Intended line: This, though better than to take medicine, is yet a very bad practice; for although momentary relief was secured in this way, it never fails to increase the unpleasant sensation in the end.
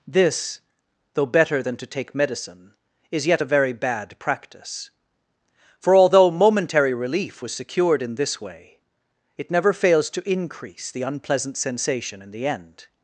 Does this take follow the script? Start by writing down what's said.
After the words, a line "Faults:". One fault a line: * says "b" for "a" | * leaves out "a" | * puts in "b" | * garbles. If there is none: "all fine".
This, though better than to take medicine, is yet a very bad practice; for although momentary relief was secured in this way, it never fails to increase the unpleasant sensation in the end.
Faults:
all fine